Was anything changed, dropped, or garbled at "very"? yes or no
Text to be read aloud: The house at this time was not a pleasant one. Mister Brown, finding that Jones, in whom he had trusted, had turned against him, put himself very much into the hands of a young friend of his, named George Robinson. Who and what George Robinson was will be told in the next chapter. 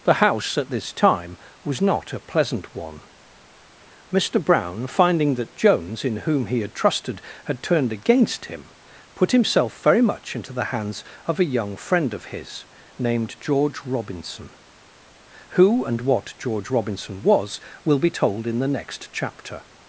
no